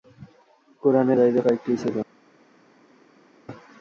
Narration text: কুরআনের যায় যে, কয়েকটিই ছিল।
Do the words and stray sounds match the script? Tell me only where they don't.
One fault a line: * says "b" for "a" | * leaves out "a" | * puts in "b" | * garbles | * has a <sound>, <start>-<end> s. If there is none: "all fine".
all fine